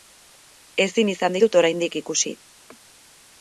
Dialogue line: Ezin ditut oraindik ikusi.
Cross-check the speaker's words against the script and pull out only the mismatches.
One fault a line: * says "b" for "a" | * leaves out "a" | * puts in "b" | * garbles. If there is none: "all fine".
* puts in "izan"